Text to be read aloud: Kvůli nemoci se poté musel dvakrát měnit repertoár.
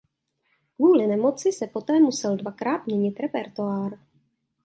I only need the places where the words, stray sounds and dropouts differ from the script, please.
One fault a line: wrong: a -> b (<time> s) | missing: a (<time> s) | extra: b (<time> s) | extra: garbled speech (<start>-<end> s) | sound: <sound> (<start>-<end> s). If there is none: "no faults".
no faults